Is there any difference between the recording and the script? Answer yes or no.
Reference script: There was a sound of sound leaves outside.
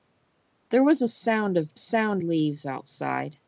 no